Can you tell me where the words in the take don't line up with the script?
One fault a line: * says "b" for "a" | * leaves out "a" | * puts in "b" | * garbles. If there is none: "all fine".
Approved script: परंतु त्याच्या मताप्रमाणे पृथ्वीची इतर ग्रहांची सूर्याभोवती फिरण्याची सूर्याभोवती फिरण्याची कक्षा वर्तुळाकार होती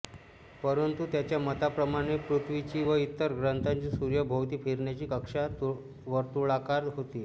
* puts in "व"
* leaves out "सूर्याभोवती फिरण्याची"